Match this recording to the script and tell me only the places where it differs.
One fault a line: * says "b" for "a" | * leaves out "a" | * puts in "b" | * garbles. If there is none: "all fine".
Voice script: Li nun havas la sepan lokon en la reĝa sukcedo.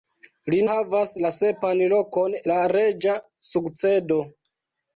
* leaves out "nun"
* leaves out "en"